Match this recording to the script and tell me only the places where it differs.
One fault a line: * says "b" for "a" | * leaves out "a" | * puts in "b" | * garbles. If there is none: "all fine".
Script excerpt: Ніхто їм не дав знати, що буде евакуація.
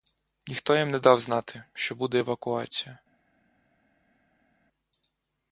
all fine